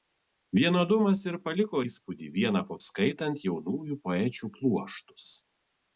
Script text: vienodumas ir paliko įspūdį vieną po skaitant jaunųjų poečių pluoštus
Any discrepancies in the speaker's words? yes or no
no